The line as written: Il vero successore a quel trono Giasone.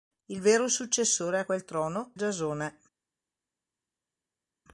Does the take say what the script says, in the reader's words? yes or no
yes